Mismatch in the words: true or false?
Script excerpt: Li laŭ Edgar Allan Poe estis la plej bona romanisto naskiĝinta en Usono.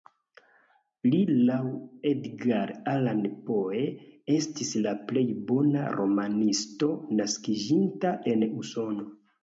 false